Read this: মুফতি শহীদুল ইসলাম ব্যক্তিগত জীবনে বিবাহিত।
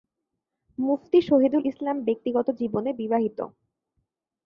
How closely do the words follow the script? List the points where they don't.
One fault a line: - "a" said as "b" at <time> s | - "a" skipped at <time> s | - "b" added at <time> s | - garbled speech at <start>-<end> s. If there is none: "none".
none